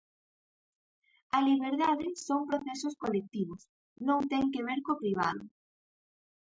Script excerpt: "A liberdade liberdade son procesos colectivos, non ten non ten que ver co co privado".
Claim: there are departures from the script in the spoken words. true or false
true